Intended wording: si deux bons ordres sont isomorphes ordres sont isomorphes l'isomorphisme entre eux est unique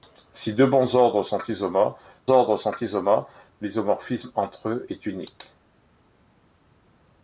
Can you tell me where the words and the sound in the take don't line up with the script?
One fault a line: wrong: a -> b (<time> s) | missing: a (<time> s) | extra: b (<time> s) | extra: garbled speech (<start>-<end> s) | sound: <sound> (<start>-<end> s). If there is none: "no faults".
no faults